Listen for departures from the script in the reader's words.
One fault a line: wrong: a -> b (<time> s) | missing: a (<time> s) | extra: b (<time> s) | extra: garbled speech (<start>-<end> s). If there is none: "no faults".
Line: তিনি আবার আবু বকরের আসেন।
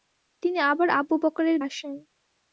no faults